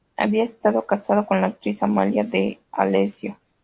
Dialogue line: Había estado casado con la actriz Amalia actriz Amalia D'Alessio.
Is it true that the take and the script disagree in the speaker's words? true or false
true